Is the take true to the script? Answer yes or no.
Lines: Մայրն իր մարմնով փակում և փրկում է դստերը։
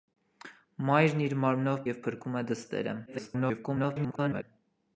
no